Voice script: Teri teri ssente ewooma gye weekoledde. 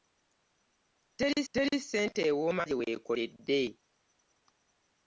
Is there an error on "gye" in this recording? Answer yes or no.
no